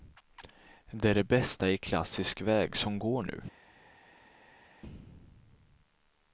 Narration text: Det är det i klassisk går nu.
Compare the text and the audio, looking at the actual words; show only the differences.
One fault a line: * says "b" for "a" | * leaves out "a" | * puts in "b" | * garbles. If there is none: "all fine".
* puts in "bästa"
* puts in "väg som"